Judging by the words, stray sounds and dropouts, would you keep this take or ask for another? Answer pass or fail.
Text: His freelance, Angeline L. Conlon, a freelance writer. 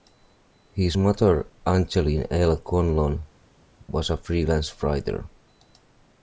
fail